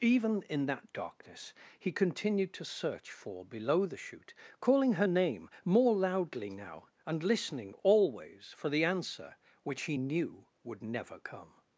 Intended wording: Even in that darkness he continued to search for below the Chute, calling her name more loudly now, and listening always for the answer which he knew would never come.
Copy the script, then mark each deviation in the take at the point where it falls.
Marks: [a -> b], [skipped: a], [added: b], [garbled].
Even in that darkness he continued to search for below the Chute, calling her name more loudly now, and listening always for the answer which he knew would never come.